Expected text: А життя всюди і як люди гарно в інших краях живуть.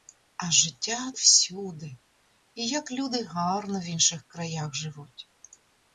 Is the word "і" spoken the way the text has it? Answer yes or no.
yes